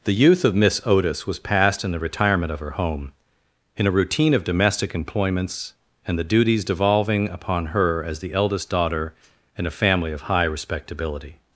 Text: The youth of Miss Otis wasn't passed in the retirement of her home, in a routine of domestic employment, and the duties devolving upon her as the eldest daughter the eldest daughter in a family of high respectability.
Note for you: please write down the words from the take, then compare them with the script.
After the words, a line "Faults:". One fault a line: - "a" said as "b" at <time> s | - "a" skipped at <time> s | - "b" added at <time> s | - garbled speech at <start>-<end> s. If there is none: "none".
The youth of Miss Otis was passed in the retirement of her home, in a routine of domestic employments, and the duties devolving upon her as the eldest daughter in a family of high respectability.
Faults:
- "wasn't" said as "was" at 1.3 s
- "employment" said as "employments" at 5.0 s
- "the eldest daughter" skipped at 9.1 s